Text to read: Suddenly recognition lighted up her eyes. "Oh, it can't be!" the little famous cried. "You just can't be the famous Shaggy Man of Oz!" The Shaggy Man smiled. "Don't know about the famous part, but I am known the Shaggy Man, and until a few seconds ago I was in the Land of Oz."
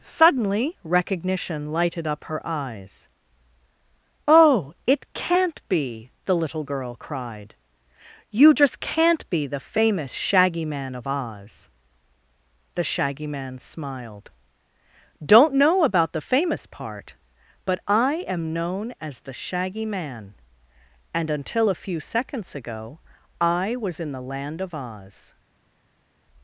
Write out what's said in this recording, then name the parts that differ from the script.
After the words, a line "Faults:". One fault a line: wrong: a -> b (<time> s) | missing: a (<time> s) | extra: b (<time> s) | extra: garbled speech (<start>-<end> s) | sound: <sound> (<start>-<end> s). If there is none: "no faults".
Suddenly recognition lighted up her eyes. "Oh, it can't be!" the little girl cried. "You just can't be the famous Shaggy Man of Oz!" The Shaggy Man smiled. "Don't know about the famous part, but I am known as the Shaggy Man, and until a few seconds ago I was in the Land of Oz."
Faults:
wrong: famous -> girl (6.6 s)
extra: as (19.0 s)